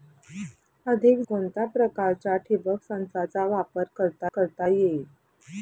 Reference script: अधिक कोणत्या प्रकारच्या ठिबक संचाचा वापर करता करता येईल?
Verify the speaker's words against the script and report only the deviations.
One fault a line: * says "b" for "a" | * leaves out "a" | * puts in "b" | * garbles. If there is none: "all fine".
all fine